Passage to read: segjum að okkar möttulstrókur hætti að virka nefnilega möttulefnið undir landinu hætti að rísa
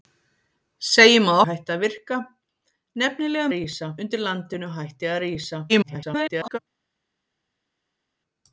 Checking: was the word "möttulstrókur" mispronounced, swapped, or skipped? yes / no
yes